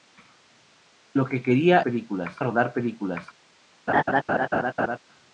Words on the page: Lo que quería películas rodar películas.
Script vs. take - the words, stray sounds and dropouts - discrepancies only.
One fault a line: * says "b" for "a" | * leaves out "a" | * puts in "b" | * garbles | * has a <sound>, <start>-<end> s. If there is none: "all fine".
* has a laugh, 3.9-5.0 s